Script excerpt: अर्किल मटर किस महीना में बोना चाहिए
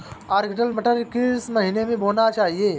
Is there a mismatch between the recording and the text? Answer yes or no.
no